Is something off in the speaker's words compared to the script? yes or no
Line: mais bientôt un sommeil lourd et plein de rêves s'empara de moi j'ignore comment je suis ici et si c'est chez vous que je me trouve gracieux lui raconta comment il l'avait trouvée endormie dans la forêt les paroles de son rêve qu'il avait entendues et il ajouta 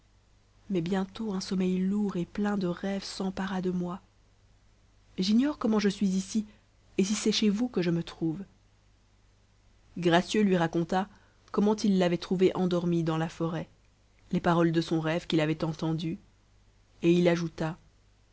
no